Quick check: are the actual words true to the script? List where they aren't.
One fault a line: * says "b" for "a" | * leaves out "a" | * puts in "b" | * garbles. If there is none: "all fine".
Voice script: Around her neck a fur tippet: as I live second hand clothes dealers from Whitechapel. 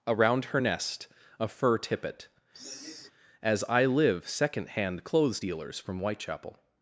* says "nest" for "neck"